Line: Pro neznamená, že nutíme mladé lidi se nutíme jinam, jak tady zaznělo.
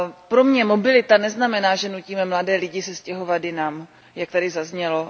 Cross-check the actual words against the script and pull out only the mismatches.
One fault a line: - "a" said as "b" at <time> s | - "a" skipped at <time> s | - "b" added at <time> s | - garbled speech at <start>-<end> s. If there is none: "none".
- "mě mobilita" added at 0.4 s
- "nutíme" said as "stěhovat" at 3.0 s